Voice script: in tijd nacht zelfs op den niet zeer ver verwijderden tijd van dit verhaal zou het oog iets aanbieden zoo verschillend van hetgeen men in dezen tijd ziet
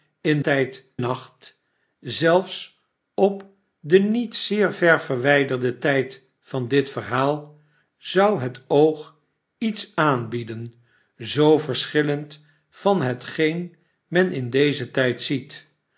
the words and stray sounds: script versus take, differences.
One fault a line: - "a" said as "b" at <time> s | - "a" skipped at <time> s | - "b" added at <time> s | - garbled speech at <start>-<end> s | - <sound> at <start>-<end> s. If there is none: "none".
none